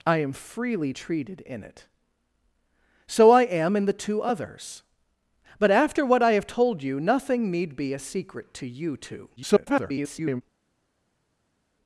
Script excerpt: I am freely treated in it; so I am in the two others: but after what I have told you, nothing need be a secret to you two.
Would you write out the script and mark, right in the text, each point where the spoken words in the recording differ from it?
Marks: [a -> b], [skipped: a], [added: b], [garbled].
I am freely treated in it; so I am in the two others: but after what I have told you, nothing need be a secret to you two. [garbled]